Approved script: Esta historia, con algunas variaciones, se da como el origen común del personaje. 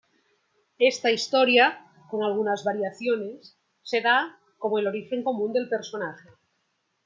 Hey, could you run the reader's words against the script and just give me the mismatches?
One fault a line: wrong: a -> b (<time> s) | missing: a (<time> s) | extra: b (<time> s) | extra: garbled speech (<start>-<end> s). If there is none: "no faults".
no faults